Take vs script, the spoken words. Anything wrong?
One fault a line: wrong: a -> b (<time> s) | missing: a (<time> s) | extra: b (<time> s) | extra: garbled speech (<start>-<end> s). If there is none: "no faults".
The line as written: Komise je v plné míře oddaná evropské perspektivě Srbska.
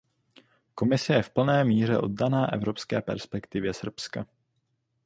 no faults